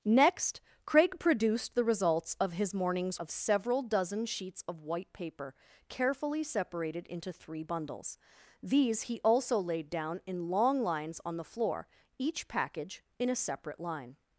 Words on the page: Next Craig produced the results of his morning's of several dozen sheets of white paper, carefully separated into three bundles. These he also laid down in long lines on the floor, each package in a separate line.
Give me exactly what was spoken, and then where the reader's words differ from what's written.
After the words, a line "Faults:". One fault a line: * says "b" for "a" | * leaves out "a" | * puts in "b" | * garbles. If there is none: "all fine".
Next Craig produced the results of his morning's of several dozen sheets of white paper, carefully separated into three bundles. These he also laid down in long lines on the floor, each package in a separate line.
Faults:
all fine